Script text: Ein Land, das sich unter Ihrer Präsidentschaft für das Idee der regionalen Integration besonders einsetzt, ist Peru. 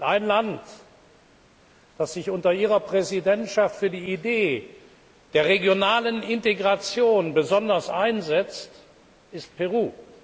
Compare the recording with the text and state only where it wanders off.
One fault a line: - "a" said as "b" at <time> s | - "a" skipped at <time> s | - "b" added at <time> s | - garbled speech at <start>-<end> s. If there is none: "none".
- "das" said as "die" at 3.9 s